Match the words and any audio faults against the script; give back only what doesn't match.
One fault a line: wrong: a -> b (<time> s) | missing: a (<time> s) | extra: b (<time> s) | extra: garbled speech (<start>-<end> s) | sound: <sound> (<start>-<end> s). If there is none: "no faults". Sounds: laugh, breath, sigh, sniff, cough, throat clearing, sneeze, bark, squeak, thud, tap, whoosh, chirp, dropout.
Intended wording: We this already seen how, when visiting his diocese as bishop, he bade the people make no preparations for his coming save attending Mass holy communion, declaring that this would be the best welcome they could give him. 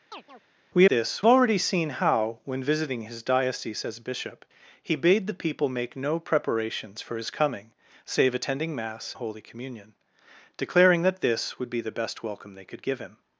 sound: chirp (0.1-0.4 s)